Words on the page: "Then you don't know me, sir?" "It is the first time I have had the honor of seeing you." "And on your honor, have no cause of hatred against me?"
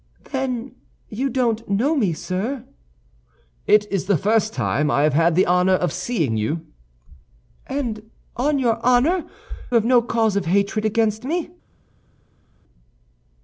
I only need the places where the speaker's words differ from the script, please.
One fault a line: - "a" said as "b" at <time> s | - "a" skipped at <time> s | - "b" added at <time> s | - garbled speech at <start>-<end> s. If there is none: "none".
none